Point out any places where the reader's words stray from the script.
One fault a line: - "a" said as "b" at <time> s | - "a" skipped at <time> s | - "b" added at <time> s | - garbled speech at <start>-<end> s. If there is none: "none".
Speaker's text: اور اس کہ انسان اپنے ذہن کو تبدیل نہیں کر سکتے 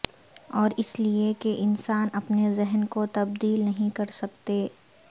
- "لئے" added at 1.0 s